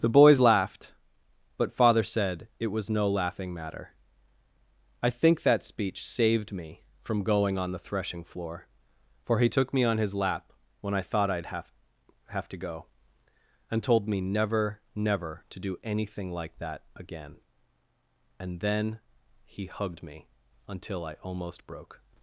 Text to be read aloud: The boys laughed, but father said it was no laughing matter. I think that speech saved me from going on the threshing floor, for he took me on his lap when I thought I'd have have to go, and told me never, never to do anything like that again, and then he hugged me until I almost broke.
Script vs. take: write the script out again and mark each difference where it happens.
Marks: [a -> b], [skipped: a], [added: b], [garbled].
The boys laughed, but father said it was no laughing matter. I think that speech saved me from going on the threshing floor, for he took me on his lap when I thought I'd have have to go, and told me never, never to do anything like that again, and then he hugged me until I almost broke.